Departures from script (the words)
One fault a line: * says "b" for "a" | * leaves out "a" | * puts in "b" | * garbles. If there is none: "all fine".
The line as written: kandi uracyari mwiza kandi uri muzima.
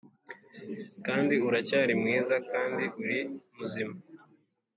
all fine